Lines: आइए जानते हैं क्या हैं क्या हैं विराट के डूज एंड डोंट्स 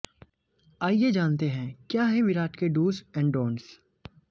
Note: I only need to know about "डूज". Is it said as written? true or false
true